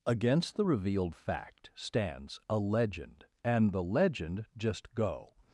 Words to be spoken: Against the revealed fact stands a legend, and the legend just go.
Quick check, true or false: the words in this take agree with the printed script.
true